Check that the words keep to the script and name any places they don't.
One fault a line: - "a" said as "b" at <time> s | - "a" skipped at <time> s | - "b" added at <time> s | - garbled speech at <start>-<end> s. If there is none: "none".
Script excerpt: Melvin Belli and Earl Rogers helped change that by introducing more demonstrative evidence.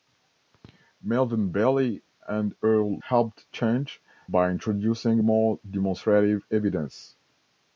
- "Rogers" skipped at 3.0 s
- "that" skipped at 4.0 s